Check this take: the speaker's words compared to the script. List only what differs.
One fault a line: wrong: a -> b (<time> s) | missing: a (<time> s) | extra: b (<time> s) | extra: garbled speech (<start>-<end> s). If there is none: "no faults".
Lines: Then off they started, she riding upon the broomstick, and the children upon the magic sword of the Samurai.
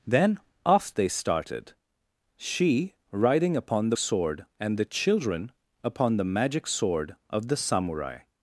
wrong: broomstick -> sword (4.0 s)